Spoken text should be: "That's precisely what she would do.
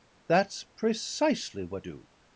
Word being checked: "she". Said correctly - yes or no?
no